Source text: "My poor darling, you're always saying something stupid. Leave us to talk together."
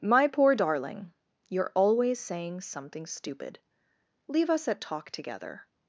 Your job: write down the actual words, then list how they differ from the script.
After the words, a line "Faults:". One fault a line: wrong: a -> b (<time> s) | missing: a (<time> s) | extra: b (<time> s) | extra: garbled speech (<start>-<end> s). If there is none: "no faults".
"My poor darling, you're always saying something stupid. Leave us at talk together."
Faults:
wrong: to -> at (4.7 s)